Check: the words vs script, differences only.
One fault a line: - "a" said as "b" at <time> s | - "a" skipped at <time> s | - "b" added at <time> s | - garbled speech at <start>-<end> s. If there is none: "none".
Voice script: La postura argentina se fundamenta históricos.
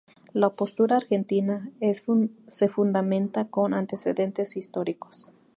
- "con antecedentes" added at 3.5 s